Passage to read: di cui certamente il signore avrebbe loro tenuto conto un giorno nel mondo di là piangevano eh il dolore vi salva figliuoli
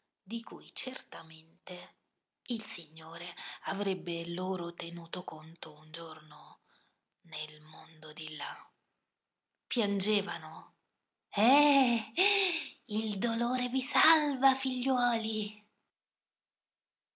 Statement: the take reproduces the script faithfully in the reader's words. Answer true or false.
true